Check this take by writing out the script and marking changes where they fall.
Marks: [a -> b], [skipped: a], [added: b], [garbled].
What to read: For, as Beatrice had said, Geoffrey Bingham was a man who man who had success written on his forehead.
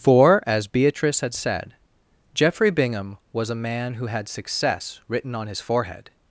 For, as Beatrice had said, Geoffrey Bingham was a man who [skipped: man who] had success written on his forehead.